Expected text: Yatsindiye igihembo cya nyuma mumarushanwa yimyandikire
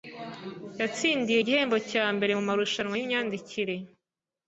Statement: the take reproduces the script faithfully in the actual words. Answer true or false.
false